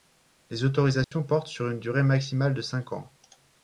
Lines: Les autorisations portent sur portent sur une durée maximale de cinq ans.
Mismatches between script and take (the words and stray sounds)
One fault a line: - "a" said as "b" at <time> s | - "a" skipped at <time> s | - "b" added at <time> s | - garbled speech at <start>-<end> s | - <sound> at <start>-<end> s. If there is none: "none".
- dropout at 1.0-1.1 s
- "portent sur" skipped at 1.7 s